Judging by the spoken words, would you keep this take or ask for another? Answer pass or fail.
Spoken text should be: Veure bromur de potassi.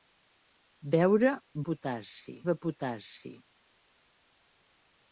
fail